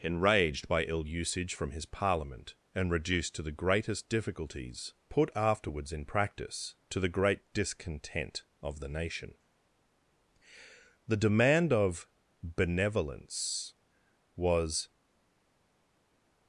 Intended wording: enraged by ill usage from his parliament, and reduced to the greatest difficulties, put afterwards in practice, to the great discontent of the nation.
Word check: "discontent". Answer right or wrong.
right